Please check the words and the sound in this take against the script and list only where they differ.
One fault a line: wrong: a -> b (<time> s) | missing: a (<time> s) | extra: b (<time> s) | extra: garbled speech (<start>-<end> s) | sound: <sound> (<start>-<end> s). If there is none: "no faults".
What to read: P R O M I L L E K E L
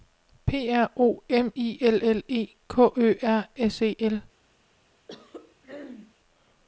extra: Ø R S (2.9 s)
sound: throat clearing (5.1-6.2 s)